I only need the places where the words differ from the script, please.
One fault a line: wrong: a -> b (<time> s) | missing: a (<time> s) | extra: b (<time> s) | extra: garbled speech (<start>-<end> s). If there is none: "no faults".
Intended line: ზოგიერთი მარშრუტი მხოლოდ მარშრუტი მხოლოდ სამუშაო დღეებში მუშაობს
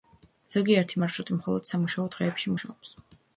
missing: მარშრუტი მხოლოდ (1.7 s)